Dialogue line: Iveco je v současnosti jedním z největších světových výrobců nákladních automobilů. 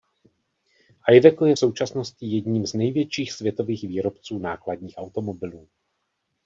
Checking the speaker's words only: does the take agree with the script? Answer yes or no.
yes